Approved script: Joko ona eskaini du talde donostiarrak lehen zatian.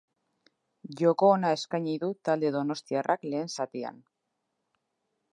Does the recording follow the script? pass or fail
pass